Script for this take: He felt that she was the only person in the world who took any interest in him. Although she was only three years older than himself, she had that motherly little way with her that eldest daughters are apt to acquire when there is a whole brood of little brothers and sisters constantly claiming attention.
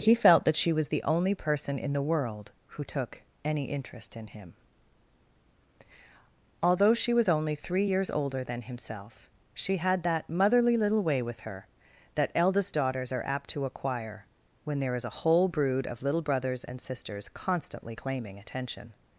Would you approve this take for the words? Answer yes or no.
yes